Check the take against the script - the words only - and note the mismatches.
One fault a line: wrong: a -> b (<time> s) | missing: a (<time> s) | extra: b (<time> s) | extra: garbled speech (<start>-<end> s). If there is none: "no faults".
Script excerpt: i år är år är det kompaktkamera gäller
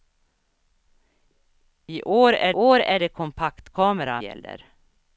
no faults